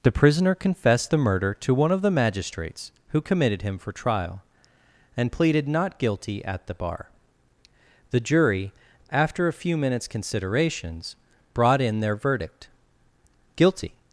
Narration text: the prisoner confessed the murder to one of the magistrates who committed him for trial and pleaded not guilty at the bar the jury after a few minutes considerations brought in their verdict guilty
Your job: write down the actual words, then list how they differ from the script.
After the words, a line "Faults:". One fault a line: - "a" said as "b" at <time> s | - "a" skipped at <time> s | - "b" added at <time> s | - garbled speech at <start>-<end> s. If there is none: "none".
the prisoner confessed the murder to one of the magistrates who committed him for trial and pleaded not guilty at the bar the jury after a few minutes considerations brought in their verdict guilty
Faults:
none